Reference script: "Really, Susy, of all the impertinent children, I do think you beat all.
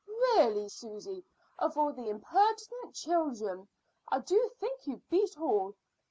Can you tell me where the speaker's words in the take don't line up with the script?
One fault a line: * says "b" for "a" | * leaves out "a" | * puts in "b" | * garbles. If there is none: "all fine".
all fine